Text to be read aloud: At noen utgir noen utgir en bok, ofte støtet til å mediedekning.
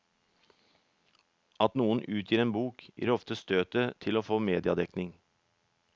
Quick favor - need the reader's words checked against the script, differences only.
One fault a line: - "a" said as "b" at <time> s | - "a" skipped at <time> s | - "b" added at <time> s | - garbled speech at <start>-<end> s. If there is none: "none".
- "noen utgir" skipped at 2.4 s
- "gir" added at 3.0 s
- "få" added at 4.3 s